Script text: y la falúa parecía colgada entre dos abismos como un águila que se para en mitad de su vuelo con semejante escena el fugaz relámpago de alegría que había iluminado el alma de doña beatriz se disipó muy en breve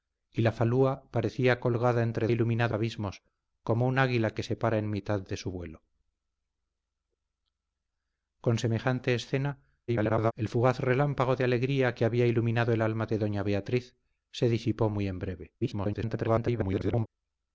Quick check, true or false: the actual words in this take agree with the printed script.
false